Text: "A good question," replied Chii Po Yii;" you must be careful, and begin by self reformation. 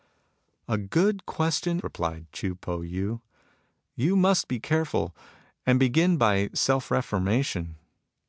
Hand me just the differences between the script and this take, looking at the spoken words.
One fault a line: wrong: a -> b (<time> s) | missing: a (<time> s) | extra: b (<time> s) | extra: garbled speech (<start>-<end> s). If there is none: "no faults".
no faults